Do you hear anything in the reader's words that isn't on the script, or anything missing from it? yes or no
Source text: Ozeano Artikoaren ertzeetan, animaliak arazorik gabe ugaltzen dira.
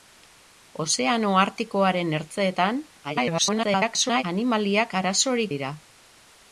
yes